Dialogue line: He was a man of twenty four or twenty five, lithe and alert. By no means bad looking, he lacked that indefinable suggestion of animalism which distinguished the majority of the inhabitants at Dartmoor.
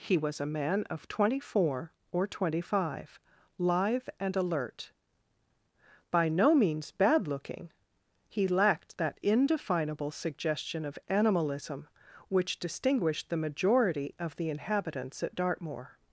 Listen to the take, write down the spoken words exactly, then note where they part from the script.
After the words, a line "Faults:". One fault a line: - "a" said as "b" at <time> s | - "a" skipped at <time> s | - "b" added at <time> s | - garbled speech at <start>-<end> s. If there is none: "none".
He was a man of twenty four or twenty five, lithe and alert. By no means bad looking, he lacked that indefinable suggestion of animalism which distinguished the majority of the inhabitants at Dartmoor.
Faults:
none